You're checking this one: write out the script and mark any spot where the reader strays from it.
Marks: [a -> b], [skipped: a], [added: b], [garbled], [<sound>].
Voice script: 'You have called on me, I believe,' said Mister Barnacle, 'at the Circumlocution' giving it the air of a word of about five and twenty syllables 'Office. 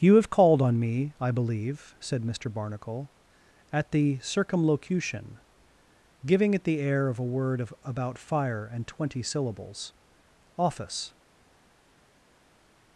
'You have called on me, I believe,' said Mister Barnacle, 'at the Circumlocution' giving it the air of a word of about [five -> fire] and twenty syllables 'Office.